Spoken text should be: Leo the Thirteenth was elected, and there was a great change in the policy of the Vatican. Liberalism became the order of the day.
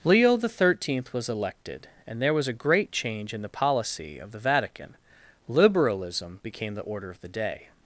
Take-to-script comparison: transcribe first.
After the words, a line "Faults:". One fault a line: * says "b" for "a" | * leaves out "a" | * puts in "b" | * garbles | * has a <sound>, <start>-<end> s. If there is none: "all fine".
Leo the Thirteenth was elected, and there was a great change in the policy of the Vatican. Liberalism became the order of the day.
Faults:
all fine